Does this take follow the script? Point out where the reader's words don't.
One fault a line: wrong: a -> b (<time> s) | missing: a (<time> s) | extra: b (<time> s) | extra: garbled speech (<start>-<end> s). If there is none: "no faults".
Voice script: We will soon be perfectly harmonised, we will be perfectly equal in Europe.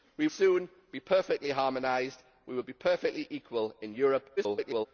missing: will (0.3 s)
extra: garbled speech (4.4-4.9 s)